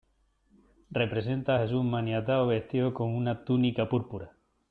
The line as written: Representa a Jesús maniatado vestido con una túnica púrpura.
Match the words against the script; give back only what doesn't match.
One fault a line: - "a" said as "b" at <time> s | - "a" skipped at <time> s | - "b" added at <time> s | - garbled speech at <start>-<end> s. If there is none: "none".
none